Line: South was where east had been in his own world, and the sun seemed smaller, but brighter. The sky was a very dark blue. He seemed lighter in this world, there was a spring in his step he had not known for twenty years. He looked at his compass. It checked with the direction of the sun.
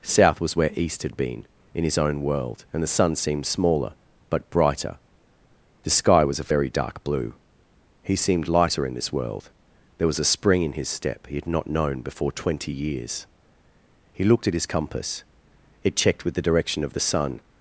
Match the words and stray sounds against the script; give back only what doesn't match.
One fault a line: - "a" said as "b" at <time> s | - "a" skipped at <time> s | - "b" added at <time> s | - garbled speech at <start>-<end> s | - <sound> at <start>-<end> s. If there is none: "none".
- "for" said as "before" at 12.0 s